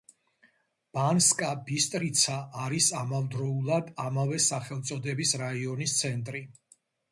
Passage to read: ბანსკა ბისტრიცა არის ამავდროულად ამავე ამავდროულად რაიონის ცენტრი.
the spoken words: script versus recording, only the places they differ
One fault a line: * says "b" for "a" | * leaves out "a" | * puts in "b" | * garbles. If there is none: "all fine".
* says "სახელწოდების" for "ამავდროულად"